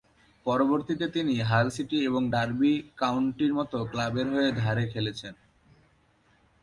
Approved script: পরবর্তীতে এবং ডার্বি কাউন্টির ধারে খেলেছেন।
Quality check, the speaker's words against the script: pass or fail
fail